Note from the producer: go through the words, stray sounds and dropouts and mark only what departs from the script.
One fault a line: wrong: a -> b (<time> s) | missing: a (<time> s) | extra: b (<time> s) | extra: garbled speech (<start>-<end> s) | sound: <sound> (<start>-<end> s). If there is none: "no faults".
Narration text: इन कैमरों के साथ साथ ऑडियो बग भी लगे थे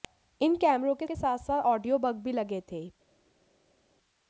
extra: के (1.0 s)